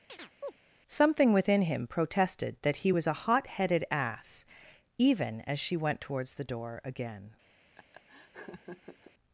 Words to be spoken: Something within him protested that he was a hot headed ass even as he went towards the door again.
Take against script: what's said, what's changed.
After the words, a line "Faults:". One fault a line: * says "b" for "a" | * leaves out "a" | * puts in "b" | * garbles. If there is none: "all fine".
Something within him protested that he was a hot headed ass even as she went towards the door again.
Faults:
* says "she" for "he"